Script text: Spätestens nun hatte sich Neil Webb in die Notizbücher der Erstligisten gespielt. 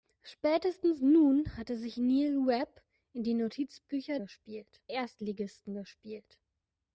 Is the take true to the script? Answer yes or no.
no